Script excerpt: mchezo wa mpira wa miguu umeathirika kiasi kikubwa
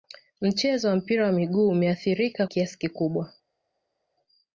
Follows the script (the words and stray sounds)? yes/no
yes